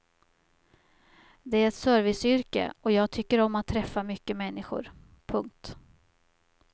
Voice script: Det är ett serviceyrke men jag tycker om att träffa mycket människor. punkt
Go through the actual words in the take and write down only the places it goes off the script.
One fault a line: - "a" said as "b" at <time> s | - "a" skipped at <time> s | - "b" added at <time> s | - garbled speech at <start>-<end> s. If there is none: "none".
- "men" said as "och" at 2.8 s